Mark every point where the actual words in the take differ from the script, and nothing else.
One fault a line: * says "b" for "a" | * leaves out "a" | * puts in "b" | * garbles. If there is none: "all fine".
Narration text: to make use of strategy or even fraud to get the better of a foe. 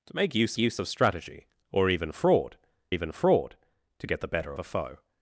* puts in "use"
* puts in "even fraud"
* leaves out "of"